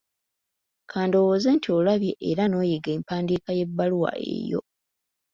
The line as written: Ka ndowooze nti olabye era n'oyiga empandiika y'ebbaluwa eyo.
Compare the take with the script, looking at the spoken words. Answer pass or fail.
pass